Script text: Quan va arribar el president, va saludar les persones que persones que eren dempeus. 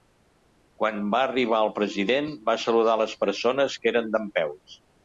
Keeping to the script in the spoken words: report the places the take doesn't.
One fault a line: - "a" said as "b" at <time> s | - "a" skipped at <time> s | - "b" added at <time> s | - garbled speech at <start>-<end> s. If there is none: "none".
- "persones que" skipped at 4.0 s